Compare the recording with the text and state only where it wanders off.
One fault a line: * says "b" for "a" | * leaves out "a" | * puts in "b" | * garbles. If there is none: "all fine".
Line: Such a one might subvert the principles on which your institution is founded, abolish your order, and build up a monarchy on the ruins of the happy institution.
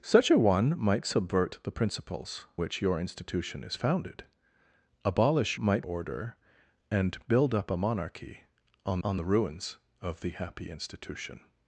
* leaves out "on"
* says "might" for "your"
* puts in "on"